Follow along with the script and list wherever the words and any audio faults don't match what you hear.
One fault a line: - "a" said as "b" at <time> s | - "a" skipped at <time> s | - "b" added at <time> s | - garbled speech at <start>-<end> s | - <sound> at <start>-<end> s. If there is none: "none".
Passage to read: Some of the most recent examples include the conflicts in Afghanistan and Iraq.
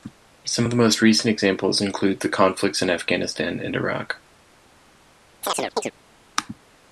- chirp at 5.4-5.9 s